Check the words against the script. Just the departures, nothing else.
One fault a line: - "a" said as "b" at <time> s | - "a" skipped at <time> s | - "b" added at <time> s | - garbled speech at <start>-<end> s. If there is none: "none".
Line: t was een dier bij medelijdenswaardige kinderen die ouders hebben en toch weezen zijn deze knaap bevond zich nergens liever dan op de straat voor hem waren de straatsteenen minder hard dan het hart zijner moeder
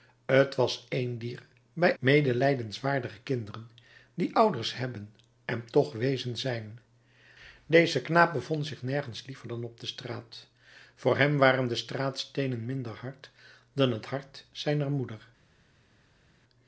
none